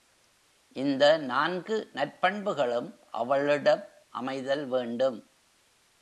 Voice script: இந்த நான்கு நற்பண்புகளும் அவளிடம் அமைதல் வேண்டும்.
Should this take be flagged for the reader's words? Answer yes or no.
no